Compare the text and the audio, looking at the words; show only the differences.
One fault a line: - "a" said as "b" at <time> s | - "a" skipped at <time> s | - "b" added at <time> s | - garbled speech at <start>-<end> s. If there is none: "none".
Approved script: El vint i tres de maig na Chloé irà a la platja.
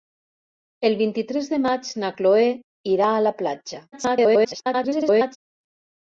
- garbled speech at 3.9-5.4 s